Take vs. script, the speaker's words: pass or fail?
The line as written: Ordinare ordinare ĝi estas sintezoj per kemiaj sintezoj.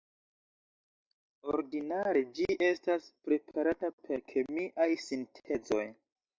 fail